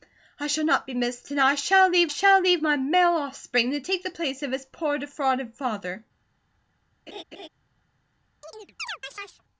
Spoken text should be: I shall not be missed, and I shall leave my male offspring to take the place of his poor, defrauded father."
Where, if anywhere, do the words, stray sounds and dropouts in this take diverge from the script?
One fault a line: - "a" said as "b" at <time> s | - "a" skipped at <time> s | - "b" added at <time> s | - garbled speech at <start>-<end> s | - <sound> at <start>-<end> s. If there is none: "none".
- "shall leave" added at 2.1 s
- laugh at 7.1-7.5 s
- chirp at 8.4-9.4 s